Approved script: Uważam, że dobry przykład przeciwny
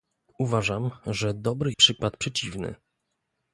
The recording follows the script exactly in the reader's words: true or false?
true